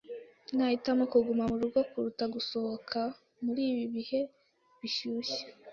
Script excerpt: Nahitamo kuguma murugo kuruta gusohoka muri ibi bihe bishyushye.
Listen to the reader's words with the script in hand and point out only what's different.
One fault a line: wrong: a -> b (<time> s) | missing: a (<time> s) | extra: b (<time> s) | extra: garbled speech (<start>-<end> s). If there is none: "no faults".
no faults